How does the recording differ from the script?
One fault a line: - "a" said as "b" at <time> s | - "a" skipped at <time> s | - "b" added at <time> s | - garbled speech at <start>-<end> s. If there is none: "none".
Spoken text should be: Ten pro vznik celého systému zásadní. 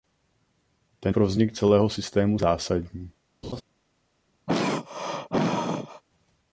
none